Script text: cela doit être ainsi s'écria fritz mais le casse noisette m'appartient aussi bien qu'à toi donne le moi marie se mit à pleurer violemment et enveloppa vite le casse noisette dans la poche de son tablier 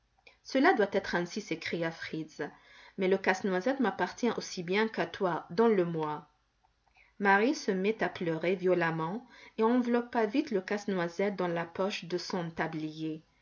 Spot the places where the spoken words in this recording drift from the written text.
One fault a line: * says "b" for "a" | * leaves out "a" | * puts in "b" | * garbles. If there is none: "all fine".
all fine